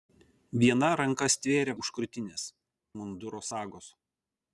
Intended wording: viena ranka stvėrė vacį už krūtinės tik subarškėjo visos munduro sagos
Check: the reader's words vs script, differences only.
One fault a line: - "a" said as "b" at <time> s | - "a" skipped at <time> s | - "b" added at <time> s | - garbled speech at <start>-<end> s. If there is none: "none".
- "vacį" skipped at 1.8 s
- "tik subarškėjo visos" skipped at 2.5 s